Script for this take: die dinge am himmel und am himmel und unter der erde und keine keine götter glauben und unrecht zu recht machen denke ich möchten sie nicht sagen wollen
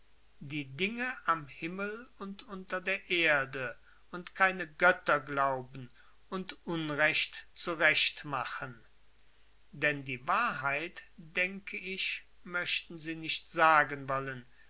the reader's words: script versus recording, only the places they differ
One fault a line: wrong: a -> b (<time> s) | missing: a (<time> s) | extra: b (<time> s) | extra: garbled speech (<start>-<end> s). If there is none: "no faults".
missing: am himmel und (2.4 s)
missing: keine (4.7 s)
extra: denn die wahrheit (9.7 s)